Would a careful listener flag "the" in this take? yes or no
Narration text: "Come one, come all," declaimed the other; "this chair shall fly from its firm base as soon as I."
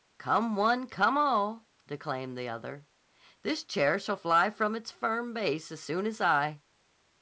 no